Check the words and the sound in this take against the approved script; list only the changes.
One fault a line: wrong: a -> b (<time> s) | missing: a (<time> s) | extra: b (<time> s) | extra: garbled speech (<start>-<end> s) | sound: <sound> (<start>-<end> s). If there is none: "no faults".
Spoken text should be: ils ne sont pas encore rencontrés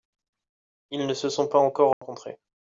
extra: se (1.1 s)
sound: dropout (1.9-2.0 s)